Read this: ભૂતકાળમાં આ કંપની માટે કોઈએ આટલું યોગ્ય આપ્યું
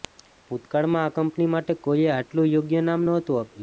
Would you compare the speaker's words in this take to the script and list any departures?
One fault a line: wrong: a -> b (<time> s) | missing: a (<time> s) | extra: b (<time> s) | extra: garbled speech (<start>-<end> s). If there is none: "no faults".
extra: નામ નહોતું (2.9 s)